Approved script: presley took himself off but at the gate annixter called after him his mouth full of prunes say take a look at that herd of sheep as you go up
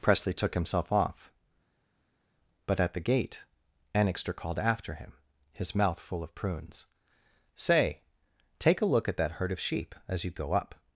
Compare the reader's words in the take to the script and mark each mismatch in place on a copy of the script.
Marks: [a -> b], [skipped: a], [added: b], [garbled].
presley took himself off but at the gate annixter called after him his mouth full of prunes say take a look at that herd of sheep as you go up